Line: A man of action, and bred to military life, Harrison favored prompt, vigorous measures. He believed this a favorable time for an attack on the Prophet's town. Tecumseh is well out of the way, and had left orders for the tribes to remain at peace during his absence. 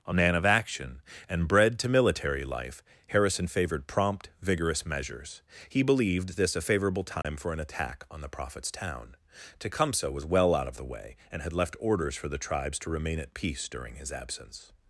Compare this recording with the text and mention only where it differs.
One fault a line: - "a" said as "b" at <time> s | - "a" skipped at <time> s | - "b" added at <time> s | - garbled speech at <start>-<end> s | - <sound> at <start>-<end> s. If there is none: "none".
- dropout at 7.2-7.2 s
- "is" said as "was" at 10.1 s